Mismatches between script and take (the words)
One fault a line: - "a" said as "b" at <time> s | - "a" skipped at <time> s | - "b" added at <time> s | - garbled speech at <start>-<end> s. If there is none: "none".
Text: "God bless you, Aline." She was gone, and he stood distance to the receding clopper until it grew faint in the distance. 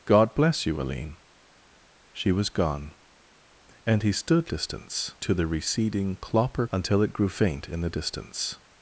none